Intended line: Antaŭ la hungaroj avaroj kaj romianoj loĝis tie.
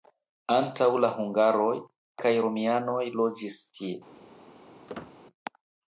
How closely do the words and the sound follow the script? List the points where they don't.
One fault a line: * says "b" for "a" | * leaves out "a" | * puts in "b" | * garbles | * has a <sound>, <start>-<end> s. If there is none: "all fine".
* leaves out "avaroj"
* has a squeak, 4.9-5.2 s